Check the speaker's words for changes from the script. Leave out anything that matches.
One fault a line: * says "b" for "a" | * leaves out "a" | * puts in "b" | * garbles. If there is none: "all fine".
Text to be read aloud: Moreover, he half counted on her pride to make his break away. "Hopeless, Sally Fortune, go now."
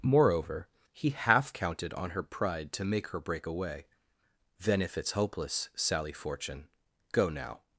* says "her" for "his"
* puts in "Then if it's"